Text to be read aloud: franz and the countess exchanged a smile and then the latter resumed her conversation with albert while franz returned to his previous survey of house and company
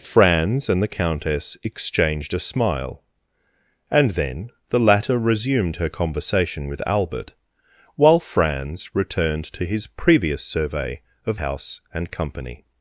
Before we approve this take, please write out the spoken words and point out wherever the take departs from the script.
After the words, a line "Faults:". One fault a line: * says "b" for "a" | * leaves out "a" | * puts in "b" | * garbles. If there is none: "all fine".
franz and the countess exchanged a smile and then the latter resumed her conversation with albert while franz returned to his previous survey of house and company
Faults:
all fine